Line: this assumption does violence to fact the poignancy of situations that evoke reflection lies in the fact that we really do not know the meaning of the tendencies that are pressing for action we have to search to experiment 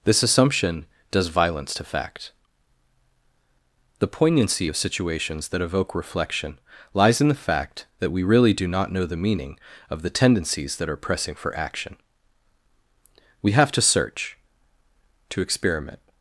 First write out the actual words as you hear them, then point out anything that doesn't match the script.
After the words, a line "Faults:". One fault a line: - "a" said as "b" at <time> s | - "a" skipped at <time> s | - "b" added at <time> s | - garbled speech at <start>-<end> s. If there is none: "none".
this assumption does violence to fact the poignancy of situations that evoke reflection lies in the fact that we really do not know the meaning of the tendencies that are pressing for action we have to search to experiment
Faults:
none